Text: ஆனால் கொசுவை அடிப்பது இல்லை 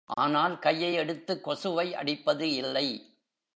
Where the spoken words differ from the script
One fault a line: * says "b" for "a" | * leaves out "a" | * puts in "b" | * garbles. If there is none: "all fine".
* puts in "கையை எடுத்துக்"